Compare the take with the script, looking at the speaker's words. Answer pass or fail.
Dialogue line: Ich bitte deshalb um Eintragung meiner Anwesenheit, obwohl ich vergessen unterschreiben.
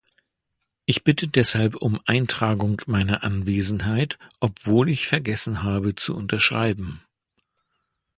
fail